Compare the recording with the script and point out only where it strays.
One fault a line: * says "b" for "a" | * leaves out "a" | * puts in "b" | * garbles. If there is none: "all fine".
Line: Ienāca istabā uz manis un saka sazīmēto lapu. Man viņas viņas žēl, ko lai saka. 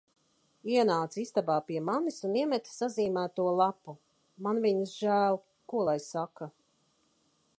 * says "pie" for "uz"
* says "iemeta" for "saka"
* leaves out "viņas"